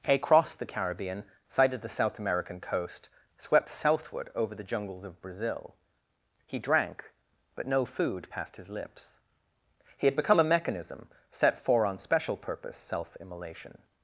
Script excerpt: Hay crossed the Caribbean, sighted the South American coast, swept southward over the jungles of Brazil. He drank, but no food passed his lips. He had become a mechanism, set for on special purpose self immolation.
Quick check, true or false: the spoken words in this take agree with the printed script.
true